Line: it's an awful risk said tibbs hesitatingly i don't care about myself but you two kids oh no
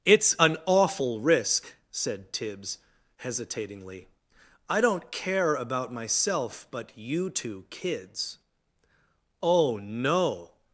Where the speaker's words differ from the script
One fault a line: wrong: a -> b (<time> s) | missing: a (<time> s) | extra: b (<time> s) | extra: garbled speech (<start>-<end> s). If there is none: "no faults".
no faults